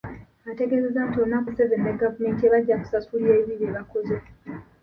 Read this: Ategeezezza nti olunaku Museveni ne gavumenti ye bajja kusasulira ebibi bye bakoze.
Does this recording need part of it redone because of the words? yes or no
no